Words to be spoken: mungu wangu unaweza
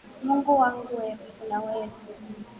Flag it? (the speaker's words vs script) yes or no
yes